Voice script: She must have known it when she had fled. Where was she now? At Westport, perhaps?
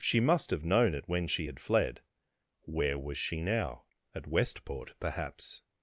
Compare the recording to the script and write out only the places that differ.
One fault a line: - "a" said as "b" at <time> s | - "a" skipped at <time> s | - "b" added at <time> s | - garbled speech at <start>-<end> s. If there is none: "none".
none